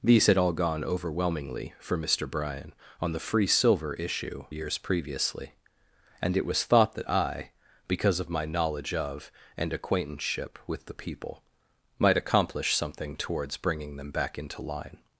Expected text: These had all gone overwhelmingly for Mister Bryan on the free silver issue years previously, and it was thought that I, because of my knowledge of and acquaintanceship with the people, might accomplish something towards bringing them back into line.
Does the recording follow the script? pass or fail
pass